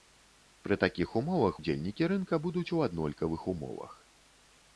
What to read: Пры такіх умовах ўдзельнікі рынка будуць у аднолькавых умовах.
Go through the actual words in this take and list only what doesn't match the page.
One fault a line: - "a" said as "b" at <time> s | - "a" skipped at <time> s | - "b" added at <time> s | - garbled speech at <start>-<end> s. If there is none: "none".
none